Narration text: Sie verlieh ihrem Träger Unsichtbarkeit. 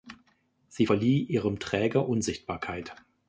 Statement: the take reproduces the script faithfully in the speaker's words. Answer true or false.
true